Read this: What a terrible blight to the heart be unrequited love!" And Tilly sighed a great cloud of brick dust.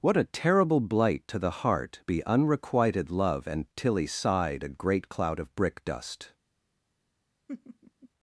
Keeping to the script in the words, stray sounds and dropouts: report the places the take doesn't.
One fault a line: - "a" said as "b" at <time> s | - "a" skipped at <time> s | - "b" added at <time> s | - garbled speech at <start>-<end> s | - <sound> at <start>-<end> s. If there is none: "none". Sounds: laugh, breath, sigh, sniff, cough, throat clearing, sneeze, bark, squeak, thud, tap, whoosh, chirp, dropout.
- laugh at 7.5-8.1 s